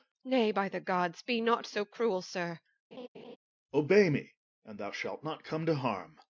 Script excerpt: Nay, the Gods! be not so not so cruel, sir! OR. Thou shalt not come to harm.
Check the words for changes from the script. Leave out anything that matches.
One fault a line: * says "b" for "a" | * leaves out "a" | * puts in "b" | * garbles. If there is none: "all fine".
* puts in "by"
* leaves out "not so"
* puts in "Obey me and"